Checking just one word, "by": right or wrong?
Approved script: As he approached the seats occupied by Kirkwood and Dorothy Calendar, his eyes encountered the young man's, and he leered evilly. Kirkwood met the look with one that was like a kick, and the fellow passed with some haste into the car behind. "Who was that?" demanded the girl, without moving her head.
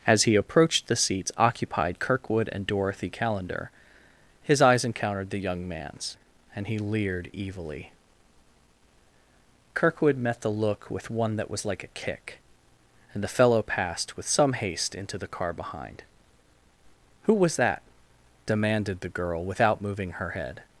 wrong